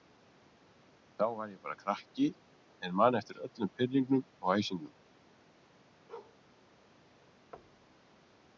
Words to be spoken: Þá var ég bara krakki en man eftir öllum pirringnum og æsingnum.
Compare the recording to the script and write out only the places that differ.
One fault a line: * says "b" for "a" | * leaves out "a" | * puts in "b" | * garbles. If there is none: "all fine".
all fine